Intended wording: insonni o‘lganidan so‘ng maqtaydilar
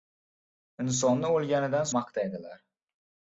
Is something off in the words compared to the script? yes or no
yes